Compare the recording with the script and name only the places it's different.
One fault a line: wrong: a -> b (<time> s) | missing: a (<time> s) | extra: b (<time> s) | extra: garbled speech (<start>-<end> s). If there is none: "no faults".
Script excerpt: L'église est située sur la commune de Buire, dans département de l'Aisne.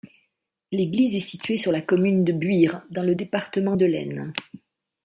extra: le (3.0 s)